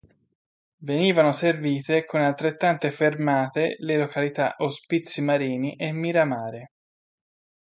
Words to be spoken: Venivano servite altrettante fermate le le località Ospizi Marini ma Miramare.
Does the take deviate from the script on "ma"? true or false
true